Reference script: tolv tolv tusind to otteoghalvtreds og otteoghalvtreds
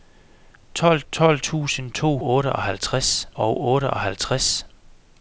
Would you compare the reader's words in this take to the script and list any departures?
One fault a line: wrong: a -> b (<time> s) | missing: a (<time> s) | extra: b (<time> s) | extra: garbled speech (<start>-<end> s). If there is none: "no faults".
no faults